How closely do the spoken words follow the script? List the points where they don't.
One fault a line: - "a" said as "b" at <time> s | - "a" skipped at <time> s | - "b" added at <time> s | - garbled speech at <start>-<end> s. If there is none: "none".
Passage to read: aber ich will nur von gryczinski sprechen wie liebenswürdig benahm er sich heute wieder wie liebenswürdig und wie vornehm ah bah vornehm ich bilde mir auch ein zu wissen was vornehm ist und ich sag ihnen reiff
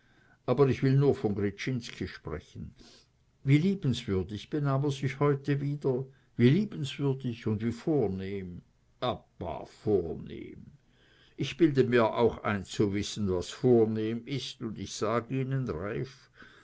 none